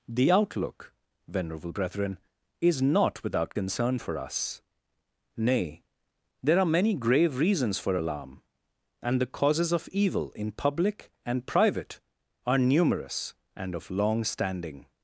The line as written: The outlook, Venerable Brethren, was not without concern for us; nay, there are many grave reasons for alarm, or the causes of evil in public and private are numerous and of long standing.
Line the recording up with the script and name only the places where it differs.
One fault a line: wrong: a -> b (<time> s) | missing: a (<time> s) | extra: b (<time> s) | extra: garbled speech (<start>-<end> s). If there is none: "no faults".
wrong: was -> is (2.6 s)
wrong: or -> and (9.0 s)